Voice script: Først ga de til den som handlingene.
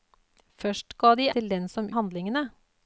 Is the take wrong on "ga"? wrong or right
right